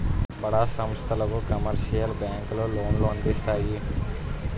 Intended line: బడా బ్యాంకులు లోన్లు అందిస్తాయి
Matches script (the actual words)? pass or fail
fail